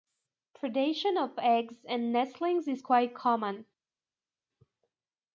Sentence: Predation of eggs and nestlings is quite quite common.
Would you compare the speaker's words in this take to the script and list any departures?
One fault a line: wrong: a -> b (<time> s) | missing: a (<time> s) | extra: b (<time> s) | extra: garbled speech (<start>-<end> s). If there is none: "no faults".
missing: quite (3.1 s)